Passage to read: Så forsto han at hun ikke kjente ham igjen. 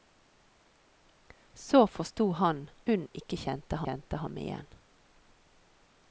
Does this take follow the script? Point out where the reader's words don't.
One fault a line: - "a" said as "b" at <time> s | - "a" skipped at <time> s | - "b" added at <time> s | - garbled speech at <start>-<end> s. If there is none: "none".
- "at" skipped at 2.7 s
- "kjente" added at 3.8 s